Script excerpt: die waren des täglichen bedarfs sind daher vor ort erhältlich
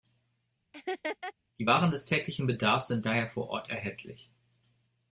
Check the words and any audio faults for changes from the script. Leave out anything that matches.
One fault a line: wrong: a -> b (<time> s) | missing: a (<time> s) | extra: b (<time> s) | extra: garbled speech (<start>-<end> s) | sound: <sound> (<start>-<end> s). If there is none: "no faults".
sound: laugh (0.7-1.3 s)